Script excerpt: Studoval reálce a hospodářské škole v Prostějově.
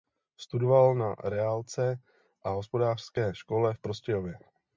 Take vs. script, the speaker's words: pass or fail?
fail